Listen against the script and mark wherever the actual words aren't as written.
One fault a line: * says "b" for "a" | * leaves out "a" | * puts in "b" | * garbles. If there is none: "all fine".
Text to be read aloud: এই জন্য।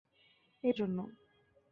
all fine